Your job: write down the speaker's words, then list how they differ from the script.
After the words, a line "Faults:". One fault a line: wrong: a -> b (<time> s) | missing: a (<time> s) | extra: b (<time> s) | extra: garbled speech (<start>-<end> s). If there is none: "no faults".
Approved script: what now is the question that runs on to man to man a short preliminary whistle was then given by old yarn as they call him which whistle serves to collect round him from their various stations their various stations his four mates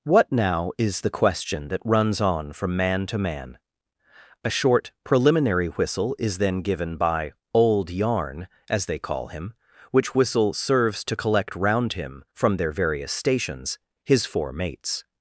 what now is the question that runs on from man to man a short preliminary whistle is then given by old yarn as they call him which whistle serves to collect round him from their various stations his four mates
Faults:
wrong: to -> from (2.5 s)
wrong: was -> is (6.2 s)
missing: their various stations (13.8 s)